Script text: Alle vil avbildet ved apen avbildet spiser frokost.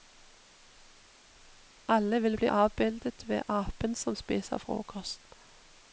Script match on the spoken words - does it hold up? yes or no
no